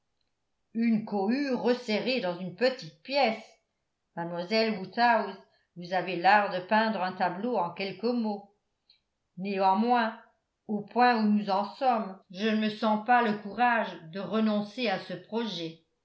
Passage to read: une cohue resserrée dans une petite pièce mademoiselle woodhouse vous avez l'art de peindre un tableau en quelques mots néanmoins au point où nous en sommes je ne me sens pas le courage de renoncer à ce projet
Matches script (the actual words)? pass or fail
pass